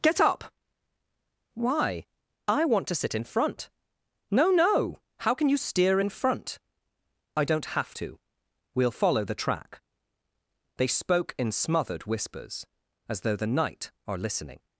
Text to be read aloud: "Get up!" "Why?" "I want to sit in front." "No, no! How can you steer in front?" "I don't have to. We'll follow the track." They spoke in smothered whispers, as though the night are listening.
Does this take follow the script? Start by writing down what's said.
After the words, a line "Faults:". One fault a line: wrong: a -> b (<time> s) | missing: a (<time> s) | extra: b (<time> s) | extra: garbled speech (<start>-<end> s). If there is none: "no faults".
"Get up!" "Why?" "I want to sit in front." "No, no! How can you steer in front?" "I don't have to. We'll follow the track." They spoke in smothered whispers, as though the night are listening.
Faults:
no faults